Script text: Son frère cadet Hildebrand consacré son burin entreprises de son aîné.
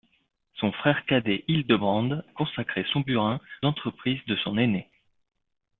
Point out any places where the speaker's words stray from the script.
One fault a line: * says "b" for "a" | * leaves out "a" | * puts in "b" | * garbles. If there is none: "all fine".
all fine